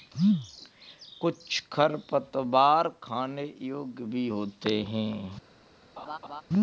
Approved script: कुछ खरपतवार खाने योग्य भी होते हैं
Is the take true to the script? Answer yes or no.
yes